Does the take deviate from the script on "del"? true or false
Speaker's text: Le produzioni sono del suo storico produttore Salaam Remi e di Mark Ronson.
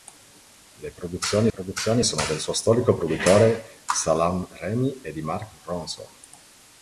false